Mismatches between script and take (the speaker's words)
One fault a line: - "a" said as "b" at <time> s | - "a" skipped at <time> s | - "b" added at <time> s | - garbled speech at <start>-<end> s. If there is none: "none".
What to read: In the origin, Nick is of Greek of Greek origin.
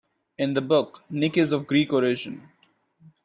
- "origin" said as "book" at 0.6 s
- "of Greek" skipped at 1.9 s